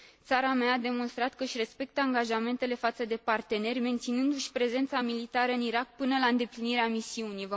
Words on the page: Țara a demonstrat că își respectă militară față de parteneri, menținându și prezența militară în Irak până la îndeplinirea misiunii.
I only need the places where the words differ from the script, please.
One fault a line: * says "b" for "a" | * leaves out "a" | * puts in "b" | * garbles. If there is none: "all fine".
* puts in "mea"
* says "angajamentele" for "militară"